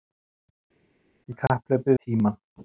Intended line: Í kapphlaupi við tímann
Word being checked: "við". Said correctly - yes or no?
no